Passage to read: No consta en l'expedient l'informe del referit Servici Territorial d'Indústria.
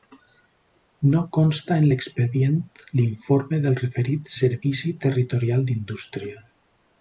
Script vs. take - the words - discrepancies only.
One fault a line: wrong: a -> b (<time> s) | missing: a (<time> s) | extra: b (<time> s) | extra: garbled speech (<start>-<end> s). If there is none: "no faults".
no faults